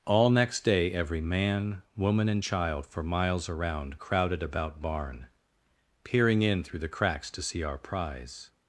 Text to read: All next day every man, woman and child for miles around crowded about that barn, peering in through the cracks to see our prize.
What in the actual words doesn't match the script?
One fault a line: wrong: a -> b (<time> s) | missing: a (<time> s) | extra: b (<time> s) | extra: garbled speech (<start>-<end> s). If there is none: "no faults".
missing: that (4.8 s)